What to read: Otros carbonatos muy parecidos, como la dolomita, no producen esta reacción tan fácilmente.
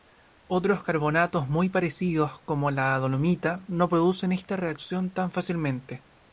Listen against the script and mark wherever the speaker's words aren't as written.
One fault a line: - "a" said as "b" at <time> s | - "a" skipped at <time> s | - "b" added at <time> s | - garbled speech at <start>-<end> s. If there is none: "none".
none